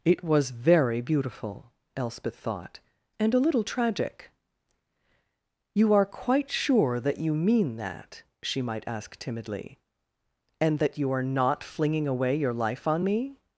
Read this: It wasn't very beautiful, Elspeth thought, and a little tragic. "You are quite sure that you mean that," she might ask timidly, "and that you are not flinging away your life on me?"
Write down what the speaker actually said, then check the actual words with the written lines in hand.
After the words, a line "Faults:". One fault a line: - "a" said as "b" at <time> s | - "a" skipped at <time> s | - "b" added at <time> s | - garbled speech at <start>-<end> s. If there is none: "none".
It was very beautiful, Elspeth thought, and a little tragic. "You are quite sure that you mean that," she might ask timidly, "and that you are not flinging away your life on me?"
Faults:
- "wasn't" said as "was" at 0.2 s